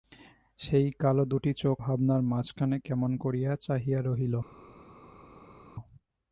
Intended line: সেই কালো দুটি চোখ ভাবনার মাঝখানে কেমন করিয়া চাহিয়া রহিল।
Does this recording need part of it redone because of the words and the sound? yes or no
no